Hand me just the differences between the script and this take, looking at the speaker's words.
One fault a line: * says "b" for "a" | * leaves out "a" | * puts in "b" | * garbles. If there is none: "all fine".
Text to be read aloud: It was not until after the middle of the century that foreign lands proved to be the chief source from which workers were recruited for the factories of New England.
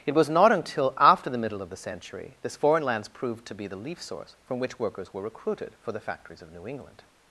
* says "this" for "that"
* says "leaf" for "chief"